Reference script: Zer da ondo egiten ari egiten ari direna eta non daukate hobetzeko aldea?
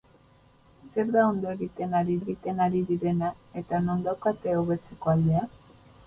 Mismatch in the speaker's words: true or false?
false